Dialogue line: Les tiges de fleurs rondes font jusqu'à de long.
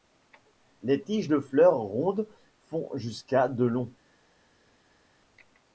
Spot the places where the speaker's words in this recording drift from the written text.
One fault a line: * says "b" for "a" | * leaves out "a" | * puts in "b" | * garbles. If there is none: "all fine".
all fine